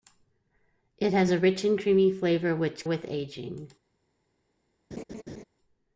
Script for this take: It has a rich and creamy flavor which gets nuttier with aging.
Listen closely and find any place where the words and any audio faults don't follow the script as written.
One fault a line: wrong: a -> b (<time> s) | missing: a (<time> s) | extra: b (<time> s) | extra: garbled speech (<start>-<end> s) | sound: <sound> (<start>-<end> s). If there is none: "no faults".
missing: gets nuttier (2.9 s)
sound: laugh (4.9-5.4 s)